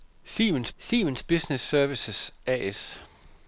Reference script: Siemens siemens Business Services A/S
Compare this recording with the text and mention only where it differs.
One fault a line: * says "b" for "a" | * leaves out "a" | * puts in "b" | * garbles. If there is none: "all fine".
all fine